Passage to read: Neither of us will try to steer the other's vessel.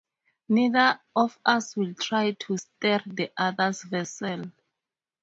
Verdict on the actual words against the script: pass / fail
pass